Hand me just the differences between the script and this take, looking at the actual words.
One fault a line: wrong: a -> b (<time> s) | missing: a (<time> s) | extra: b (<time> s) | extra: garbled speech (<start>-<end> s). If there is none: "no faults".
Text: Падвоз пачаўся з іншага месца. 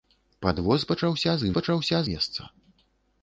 wrong: іншага -> пачаўся (1.6 s)